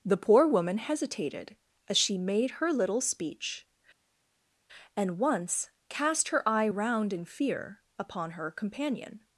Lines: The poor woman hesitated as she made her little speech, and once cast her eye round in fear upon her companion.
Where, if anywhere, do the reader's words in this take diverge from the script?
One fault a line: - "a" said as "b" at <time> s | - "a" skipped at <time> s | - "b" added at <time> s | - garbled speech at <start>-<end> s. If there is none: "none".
none